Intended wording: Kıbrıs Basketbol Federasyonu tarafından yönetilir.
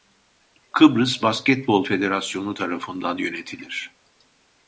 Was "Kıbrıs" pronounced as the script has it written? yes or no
yes